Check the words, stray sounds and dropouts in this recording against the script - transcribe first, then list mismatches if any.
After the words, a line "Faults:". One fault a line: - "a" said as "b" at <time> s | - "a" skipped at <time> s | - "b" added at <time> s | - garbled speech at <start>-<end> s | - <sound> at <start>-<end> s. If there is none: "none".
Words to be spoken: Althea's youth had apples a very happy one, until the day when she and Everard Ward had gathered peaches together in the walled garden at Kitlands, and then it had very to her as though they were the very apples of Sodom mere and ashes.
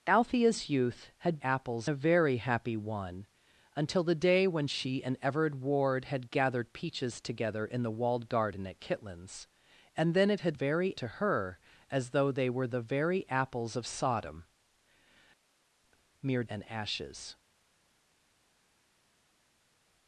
Althea's youth had apples a very happy one, until the day when she and Everard Ward had gathered peaches together in the walled garden at Kitlands, and then it had very to her as though they were the very apples of Sodom mere and ashes.
Faults:
none